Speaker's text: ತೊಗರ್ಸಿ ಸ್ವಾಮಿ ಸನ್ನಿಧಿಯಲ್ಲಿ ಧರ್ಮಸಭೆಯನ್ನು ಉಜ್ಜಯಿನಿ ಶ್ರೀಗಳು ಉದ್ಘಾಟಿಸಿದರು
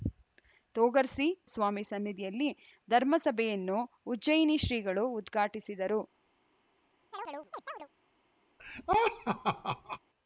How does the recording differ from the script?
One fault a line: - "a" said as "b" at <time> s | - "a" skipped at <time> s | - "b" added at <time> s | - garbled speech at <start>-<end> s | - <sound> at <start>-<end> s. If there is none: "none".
- chirp at 7.1-7.9 s
- laugh at 8.6-10.0 s